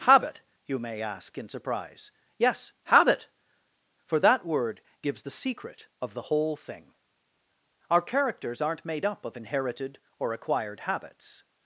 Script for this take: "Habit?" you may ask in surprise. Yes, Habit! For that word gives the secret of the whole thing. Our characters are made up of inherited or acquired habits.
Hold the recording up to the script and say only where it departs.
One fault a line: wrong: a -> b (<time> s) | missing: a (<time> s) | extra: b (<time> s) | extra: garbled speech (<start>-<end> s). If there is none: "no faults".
wrong: are -> aren't (8.6 s)